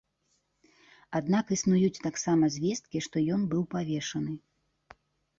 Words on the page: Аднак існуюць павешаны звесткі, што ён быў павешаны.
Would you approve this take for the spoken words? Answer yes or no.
no